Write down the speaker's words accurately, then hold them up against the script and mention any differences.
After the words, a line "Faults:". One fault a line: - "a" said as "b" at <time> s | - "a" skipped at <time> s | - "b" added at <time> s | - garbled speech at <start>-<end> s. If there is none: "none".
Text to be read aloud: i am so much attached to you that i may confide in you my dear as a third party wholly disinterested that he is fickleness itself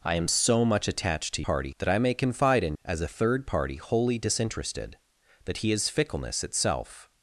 i am so much attached to party that i may confide in as a third party wholly disinterested that he is fickleness itself
Faults:
- "you" said as "party" at 1.4 s
- "you my dear" skipped at 2.8 s